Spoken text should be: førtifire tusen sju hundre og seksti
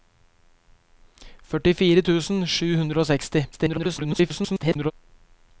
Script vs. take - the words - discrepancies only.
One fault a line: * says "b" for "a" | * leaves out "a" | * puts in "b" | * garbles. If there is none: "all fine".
* garbles